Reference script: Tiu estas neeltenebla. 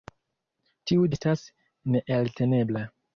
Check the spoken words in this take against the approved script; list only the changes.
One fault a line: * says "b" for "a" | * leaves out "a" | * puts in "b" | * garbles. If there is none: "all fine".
all fine